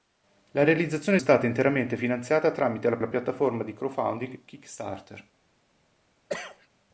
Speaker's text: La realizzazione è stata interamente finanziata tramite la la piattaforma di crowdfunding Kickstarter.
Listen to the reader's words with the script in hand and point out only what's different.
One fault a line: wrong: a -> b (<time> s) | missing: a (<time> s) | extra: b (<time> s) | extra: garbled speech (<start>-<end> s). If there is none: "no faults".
no faults